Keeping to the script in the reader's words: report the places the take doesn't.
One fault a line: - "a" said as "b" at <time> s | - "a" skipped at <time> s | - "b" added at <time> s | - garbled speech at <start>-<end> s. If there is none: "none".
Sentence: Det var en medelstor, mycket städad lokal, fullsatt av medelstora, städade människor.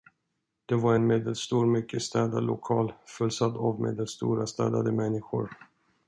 none